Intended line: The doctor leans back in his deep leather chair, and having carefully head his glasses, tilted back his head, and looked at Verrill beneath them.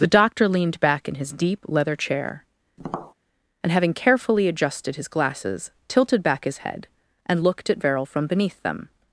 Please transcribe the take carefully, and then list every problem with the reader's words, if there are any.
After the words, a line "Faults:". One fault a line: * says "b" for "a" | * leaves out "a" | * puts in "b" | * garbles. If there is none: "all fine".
The doctor leaned back in his deep leather chair, and having carefully adjusted his glasses, tilted back his head, and looked at Verrill from beneath them.
Faults:
* says "leaned" for "leans"
* says "adjusted" for "head"
* puts in "from"